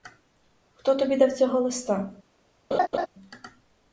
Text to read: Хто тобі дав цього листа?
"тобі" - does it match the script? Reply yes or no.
yes